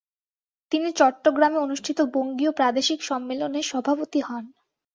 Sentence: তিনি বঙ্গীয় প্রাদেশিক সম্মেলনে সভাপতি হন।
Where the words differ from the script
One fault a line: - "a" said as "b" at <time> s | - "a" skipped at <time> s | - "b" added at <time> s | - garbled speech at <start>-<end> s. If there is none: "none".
- "চট্টগ্রামে অনুষ্ঠিত" added at 1.0 s